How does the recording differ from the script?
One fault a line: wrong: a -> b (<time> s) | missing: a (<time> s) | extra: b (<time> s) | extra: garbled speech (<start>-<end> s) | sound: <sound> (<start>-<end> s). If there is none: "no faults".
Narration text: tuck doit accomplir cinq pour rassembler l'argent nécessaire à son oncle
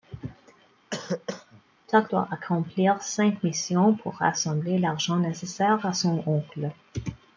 sound: cough (0.9-1.6 s)
extra: missions (3.4 s)